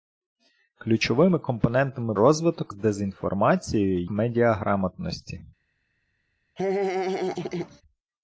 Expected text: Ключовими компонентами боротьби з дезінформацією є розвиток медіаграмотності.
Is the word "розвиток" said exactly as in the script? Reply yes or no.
no